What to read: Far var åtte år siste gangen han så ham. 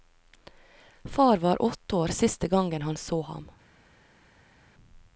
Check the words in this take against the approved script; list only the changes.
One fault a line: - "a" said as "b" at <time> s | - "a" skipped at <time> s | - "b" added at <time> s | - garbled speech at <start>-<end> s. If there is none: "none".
none